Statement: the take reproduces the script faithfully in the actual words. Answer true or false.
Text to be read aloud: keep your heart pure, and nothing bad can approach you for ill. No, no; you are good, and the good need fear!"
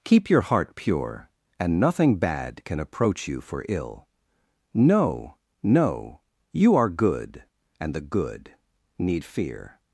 true